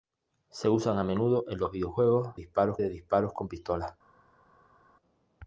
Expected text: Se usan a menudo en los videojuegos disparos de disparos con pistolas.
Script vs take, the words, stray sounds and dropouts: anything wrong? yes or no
no